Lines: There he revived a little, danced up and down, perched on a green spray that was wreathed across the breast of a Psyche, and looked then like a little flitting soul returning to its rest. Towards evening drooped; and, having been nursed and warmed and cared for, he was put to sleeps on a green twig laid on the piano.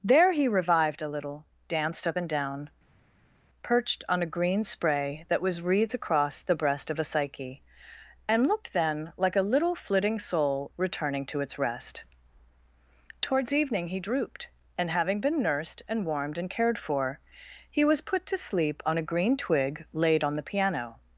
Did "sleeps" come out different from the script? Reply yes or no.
yes